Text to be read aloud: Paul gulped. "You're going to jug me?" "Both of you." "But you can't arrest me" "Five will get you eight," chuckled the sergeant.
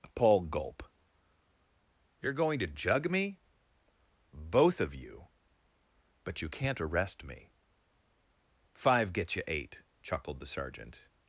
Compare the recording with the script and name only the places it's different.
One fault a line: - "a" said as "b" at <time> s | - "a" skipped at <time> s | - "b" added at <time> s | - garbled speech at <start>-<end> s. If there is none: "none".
- "gulped" said as "gulp" at 0.4 s
- "will" skipped at 9.1 s